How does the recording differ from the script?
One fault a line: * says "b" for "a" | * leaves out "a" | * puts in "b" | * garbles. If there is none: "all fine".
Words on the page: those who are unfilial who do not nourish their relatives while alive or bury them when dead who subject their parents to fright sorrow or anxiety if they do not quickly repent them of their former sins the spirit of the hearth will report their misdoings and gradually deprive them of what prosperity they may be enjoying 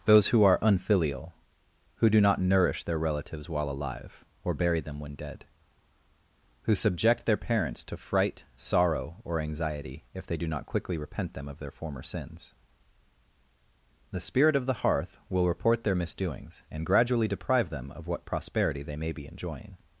all fine